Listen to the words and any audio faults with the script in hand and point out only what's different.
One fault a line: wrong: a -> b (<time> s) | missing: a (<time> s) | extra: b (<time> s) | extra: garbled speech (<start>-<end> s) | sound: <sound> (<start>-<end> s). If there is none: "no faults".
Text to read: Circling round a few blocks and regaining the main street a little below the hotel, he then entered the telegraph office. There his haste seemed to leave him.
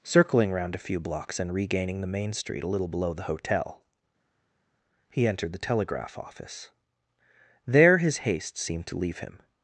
missing: then (5.3 s)